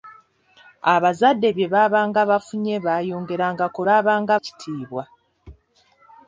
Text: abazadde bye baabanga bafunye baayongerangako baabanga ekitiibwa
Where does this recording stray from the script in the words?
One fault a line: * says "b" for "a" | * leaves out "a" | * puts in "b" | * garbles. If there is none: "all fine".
all fine